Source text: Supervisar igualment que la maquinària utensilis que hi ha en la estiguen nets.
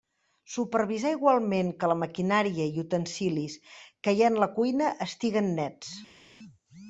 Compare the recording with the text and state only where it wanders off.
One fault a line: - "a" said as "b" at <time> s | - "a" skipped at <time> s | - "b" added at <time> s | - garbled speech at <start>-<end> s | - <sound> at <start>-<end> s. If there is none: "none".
- "i" added at 2.7 s
- "cuina" added at 4.6 s